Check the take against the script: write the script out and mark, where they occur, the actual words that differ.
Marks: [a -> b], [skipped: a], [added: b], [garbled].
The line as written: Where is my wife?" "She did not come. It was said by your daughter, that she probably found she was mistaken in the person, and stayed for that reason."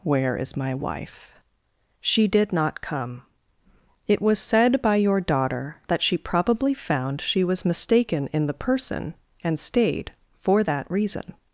Where is my wife?" "She did not come. It was said by your daughter, that she probably found she was mistaken in the person, and stayed for that reason."